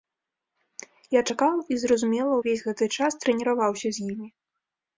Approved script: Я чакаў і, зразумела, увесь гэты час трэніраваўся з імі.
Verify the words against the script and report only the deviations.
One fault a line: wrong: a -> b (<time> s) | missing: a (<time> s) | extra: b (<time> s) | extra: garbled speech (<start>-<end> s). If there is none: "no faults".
no faults